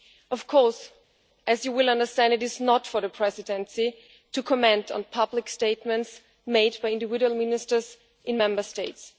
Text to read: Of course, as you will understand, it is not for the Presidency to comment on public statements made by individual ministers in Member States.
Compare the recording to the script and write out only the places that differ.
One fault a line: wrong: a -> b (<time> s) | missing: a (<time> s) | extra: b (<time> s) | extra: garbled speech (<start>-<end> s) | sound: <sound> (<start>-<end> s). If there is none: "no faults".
no faults